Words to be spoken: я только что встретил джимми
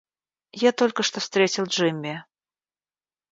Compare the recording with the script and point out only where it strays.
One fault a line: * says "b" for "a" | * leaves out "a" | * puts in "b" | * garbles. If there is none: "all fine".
all fine